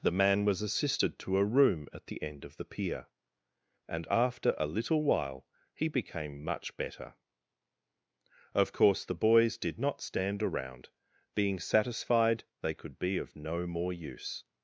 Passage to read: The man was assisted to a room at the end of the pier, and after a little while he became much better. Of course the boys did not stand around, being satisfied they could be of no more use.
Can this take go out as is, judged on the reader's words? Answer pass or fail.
pass